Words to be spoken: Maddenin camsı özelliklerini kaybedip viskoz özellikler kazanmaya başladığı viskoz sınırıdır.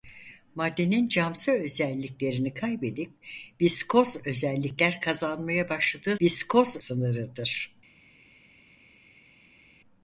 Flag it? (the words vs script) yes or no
no